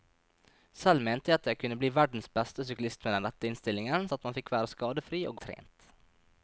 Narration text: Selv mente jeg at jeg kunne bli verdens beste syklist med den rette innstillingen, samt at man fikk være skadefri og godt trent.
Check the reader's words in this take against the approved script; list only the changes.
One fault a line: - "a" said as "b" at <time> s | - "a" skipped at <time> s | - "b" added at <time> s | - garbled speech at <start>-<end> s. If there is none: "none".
- "samt" skipped at 4.1 s
- "godt" skipped at 5.4 s